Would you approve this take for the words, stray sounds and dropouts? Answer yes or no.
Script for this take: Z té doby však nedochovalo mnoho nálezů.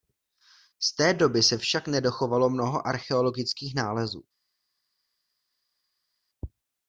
no